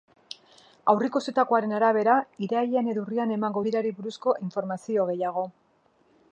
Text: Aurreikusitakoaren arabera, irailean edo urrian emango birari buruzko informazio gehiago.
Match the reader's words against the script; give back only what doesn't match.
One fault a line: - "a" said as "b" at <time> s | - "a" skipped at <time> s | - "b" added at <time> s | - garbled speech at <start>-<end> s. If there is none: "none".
none